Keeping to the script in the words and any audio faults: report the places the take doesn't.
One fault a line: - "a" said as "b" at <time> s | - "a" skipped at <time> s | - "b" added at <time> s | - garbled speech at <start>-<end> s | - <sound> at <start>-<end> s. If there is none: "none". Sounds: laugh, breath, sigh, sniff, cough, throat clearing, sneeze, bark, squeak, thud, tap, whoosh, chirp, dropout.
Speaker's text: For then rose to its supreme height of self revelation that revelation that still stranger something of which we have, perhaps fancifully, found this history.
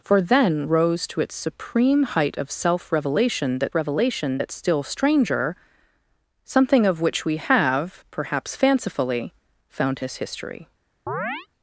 - chirp at 11.1-11.5 s